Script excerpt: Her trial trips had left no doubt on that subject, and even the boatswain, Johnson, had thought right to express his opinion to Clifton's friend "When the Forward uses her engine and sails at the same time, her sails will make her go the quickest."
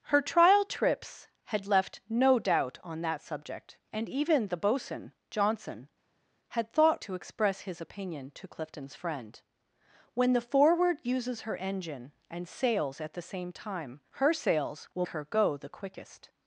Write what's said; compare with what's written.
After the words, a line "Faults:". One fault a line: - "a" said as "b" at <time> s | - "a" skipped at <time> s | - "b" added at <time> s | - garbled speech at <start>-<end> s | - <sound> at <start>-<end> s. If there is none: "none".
Her trial trips had left no doubt on that subject, and even the boatswain, Johnson, had thought to express his opinion to Clifton's friend "When the Forward uses her engine and sails at the same time, her sails will her go the quickest."
Faults:
- "right" skipped at 7.0 s
- "make" skipped at 15.1 s